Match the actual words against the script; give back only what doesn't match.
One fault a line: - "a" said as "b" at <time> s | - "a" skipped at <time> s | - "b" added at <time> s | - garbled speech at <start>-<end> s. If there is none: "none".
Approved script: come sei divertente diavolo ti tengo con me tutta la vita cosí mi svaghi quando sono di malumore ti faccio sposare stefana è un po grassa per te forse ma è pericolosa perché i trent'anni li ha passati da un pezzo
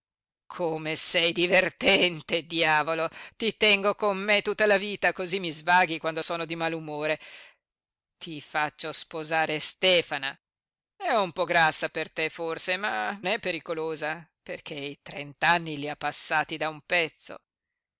none